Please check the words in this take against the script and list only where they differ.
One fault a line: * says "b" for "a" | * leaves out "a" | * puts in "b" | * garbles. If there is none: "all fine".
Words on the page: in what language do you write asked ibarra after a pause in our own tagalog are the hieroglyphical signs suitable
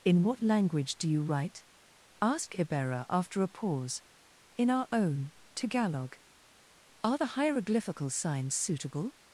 * says "ask" for "asked"